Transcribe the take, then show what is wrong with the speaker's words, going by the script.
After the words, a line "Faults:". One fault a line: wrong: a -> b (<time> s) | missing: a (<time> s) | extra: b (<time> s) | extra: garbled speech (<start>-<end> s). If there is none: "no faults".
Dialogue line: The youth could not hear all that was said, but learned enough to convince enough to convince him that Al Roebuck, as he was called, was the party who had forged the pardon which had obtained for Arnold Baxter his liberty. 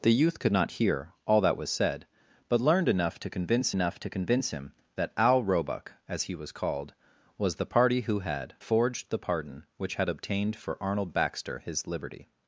The youth could not hear all that was said, but learned enough to convince enough to convince him that Al Roebuck, as he was called, was the party who had forged the pardon which had obtained for Arnold Baxter his liberty.
Faults:
no faults